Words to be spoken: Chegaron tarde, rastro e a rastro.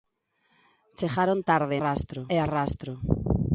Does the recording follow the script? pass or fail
pass